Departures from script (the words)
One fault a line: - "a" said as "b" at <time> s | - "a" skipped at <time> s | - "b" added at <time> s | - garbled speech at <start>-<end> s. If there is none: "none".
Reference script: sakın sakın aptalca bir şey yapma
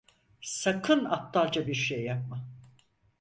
- "sakın" skipped at 1.1 s